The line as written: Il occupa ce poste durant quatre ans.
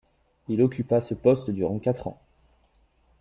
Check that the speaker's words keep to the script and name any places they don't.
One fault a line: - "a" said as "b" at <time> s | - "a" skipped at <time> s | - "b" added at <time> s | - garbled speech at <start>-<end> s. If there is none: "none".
none